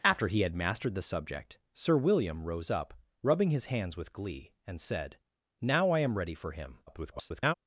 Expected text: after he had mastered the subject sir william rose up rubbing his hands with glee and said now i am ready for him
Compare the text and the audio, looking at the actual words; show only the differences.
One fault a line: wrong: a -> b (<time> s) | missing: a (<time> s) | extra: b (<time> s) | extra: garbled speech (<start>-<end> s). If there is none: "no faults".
extra: garbled speech (6.9-7.5 s)